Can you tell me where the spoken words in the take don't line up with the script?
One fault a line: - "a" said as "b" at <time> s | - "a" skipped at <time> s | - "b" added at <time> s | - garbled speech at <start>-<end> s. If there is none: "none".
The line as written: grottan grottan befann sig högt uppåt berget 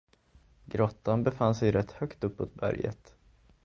- "grottan" skipped at 1.2 s
- "rätt" added at 1.7 s